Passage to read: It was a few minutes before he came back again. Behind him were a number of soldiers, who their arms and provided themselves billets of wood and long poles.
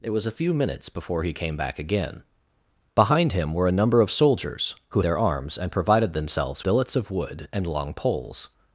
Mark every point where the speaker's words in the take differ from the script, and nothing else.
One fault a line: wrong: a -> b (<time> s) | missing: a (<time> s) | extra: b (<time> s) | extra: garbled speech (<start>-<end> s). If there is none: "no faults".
no faults